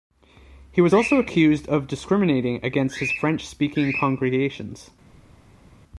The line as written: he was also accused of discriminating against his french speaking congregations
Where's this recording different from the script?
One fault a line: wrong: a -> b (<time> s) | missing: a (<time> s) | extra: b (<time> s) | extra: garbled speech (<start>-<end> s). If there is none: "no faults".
no faults